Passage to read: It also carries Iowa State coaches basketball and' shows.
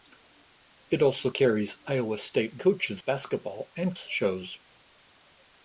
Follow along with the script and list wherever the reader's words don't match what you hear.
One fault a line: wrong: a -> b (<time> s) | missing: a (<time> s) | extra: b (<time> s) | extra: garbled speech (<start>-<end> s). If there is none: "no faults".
no faults